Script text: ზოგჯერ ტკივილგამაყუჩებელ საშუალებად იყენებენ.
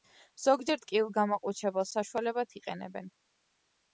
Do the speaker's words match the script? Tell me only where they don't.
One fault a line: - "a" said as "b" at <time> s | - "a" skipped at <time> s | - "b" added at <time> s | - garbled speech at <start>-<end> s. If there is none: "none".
none